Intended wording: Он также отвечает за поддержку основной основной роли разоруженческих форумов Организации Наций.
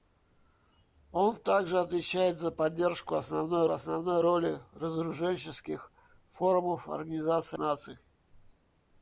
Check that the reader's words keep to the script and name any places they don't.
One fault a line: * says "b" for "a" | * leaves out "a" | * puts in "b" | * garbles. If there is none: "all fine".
all fine